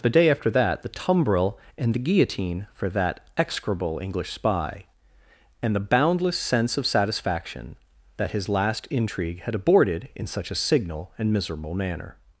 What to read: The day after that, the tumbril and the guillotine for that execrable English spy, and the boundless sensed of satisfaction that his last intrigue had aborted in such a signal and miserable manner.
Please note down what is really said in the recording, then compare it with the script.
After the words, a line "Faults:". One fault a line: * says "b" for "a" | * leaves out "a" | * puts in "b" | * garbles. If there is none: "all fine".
The day after that, the tumbril and the guillotine for that execrable English spy, and the boundless sense of satisfaction that his last intrigue had aborted in such a signal and miserable manner.
Faults:
* says "sense" for "sensed"